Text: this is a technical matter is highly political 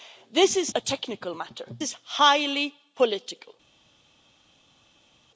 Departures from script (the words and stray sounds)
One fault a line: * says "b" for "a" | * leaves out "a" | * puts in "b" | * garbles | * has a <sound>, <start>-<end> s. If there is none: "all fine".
all fine